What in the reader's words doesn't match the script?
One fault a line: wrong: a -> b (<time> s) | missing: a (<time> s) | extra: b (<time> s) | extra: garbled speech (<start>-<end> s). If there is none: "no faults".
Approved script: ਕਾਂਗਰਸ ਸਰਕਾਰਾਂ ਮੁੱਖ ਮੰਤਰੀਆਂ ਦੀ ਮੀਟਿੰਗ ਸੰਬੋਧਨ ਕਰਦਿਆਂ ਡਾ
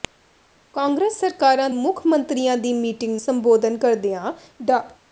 no faults